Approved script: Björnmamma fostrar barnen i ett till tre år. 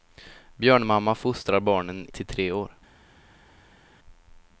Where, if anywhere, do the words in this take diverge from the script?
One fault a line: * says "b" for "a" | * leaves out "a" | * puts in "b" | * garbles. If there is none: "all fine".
* leaves out "i ett"